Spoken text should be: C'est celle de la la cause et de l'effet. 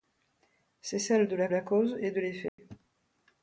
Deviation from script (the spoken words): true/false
false